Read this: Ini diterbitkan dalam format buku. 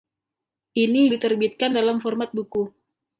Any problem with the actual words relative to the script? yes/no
no